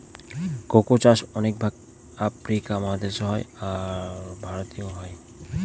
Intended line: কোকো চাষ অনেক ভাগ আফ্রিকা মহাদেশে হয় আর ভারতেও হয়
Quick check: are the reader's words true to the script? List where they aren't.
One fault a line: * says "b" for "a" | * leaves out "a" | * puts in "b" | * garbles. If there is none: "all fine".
all fine